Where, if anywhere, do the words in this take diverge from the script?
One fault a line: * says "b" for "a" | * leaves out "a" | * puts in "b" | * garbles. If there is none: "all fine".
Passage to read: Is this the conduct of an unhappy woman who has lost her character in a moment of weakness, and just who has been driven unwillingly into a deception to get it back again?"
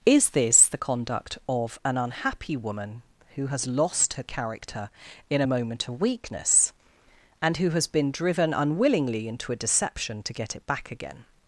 * leaves out "just"